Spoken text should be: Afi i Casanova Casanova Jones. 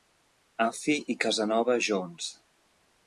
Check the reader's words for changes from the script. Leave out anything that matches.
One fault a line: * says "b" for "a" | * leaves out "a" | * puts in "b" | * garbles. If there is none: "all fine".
* leaves out "Casanova"